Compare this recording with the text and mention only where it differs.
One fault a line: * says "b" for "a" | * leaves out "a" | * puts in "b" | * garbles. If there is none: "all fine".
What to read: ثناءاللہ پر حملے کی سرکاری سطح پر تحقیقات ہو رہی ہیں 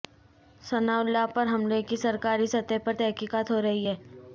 all fine